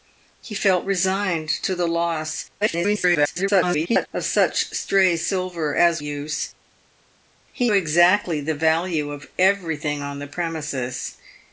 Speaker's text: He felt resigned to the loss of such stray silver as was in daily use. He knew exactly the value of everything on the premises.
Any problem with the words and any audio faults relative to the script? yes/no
yes